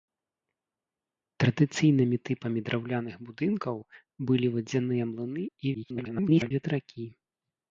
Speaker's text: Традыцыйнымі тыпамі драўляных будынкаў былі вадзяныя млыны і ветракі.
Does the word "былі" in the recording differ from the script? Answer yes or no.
no